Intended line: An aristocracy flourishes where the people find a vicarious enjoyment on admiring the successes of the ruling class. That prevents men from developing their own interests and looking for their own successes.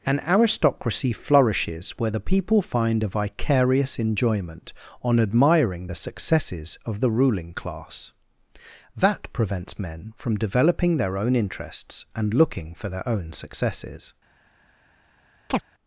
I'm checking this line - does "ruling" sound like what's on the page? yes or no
yes